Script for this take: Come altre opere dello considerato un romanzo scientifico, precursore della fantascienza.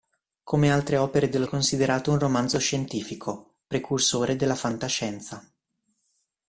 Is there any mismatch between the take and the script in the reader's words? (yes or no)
no